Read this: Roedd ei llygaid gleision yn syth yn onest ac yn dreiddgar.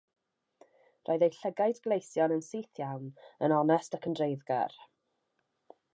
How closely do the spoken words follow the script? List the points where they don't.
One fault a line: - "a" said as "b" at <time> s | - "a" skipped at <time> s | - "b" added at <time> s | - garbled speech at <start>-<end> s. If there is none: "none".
- "iawn" added at 2.9 s